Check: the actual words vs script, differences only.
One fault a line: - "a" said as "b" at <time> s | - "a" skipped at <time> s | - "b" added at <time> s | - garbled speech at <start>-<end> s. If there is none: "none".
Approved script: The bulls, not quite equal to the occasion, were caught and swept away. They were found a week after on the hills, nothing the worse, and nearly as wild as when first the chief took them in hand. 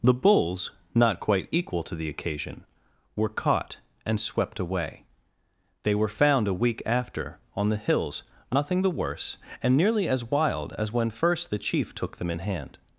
none